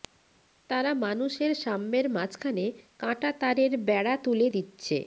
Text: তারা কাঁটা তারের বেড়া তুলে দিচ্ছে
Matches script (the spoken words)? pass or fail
fail